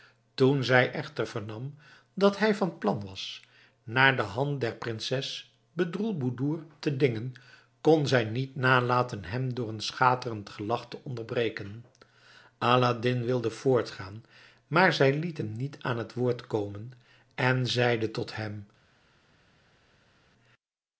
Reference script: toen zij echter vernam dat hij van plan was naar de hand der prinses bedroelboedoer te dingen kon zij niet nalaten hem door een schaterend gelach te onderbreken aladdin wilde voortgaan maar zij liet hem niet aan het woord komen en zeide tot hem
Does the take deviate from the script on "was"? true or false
false